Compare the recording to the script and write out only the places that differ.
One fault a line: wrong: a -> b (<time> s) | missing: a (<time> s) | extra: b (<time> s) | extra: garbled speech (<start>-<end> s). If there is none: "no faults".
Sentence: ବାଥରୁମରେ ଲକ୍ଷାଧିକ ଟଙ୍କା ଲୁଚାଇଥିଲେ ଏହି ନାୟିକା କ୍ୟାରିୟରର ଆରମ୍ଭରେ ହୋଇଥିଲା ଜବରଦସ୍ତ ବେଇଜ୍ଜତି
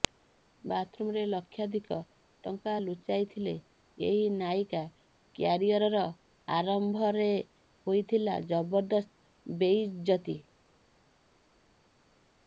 no faults